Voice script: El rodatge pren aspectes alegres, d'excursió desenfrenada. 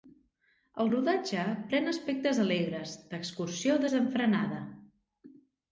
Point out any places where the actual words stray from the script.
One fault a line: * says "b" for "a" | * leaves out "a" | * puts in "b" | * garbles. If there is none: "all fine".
all fine